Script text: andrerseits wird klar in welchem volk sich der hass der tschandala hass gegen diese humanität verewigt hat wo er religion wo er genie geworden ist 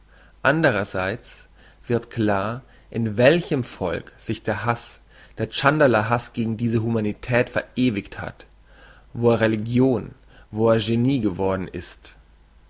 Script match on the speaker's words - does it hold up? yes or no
yes